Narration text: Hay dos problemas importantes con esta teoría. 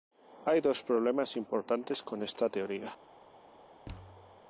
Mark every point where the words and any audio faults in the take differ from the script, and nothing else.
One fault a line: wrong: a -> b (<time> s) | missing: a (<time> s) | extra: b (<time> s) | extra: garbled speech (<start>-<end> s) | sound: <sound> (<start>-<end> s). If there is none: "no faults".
sound: thud (3.9-4.4 s)